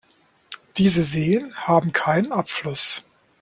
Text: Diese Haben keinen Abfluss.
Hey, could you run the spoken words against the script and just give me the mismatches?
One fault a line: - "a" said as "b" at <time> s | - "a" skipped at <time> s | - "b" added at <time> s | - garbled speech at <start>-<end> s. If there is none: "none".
- "Seen" added at 1.0 s